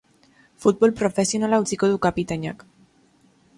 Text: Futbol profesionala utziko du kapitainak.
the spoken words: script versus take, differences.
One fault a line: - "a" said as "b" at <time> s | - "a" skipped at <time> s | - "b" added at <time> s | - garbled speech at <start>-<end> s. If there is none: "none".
none